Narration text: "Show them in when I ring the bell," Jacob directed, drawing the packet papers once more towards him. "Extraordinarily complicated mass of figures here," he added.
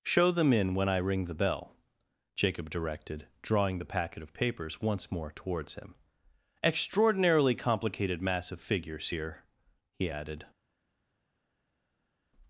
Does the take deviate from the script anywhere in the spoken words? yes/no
yes